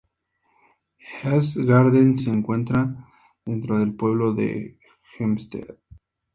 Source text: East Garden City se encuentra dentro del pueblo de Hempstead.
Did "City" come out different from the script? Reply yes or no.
yes